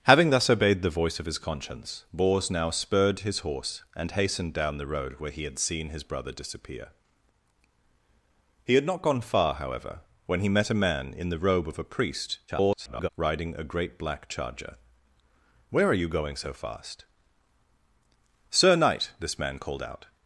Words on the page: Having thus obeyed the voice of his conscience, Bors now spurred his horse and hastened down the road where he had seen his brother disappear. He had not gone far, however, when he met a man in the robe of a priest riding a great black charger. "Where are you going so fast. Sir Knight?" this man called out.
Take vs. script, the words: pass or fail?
fail